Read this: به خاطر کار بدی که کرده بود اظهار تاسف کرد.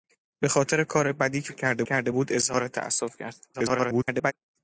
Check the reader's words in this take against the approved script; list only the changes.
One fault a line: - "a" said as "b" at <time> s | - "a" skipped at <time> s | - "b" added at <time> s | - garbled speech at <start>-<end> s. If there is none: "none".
- "کرده" added at 1.8 s
- garbled speech at 3.5-4.3 s